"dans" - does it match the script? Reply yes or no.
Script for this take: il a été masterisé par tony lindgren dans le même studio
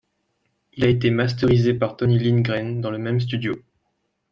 yes